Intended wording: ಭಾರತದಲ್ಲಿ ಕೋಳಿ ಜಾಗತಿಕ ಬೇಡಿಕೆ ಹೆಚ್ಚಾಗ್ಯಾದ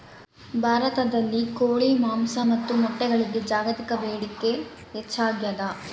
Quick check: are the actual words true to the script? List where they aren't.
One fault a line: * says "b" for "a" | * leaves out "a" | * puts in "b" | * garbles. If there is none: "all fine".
* puts in "ಮಾಂಸ ಮತ್ತು ಮೊಟ್ಟೆಗಳಿಗೆ"